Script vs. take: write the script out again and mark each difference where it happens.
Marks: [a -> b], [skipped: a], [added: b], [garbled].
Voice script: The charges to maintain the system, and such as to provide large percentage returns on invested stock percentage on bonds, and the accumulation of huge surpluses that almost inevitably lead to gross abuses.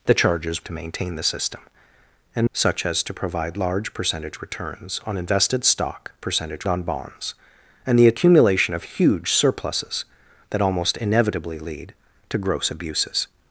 The charges to maintain the system, and such as to provide large percentage returns on invested stock percentage on bonds, and the accumulation of huge surpluses that almost inevitably lead to gross abuses.